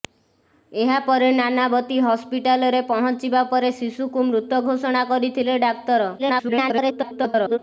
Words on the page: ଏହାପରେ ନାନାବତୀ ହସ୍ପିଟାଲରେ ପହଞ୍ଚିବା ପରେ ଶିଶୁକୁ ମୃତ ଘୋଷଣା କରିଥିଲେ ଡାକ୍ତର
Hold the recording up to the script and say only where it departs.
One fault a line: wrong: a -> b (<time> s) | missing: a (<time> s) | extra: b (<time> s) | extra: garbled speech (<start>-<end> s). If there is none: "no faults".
extra: garbled speech (6.2-7.6 s)